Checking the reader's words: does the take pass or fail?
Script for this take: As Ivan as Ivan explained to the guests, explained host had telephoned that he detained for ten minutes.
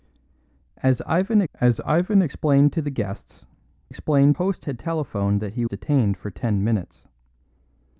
pass